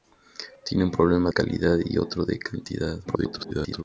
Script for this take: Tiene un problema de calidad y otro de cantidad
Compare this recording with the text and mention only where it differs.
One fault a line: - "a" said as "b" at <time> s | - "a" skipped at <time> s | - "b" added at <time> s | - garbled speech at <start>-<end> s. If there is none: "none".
- "de" skipped at 1.3 s
- garbled speech at 3.0-3.8 s